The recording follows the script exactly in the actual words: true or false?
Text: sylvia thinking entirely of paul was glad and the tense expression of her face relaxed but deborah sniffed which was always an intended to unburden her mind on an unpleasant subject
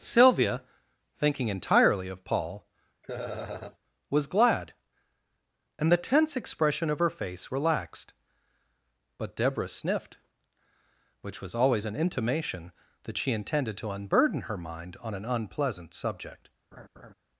false